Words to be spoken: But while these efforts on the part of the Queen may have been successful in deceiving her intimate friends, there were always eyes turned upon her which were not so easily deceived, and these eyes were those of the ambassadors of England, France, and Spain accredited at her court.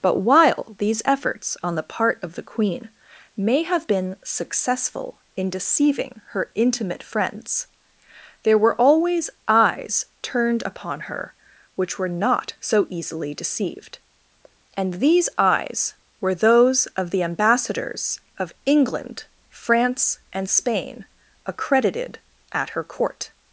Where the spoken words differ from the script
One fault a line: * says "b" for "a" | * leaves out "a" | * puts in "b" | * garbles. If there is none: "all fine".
all fine